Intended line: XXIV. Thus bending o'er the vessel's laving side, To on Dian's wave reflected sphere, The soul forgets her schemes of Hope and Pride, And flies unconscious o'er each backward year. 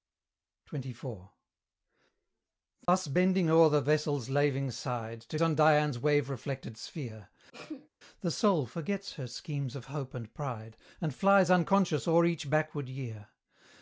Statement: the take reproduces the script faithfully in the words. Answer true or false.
true